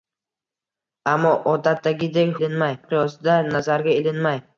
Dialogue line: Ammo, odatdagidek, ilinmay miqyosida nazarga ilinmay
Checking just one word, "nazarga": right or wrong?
right